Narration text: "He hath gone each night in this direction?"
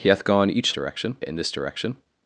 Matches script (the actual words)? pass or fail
fail